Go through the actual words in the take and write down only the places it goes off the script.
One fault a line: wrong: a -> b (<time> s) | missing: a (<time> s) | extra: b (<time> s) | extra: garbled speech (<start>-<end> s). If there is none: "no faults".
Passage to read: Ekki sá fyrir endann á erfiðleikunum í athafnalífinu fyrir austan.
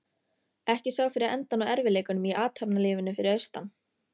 no faults